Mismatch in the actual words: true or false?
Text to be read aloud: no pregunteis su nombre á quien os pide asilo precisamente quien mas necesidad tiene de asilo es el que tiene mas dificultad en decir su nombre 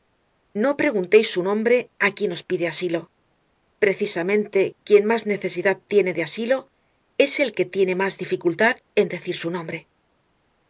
false